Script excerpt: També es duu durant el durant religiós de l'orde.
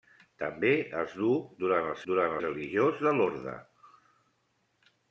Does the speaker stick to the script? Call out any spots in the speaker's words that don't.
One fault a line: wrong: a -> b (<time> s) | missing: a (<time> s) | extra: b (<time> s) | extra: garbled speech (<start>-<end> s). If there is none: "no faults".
no faults